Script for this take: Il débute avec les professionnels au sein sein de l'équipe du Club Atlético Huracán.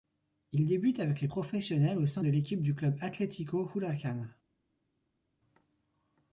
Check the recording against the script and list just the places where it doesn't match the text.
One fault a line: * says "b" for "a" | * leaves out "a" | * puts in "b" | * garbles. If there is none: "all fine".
* leaves out "sein"